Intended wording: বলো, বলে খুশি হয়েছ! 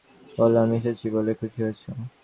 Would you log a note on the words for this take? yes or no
yes